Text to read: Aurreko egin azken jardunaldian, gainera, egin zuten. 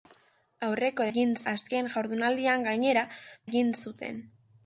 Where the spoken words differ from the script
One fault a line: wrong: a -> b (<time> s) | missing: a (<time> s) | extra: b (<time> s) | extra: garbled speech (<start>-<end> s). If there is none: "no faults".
no faults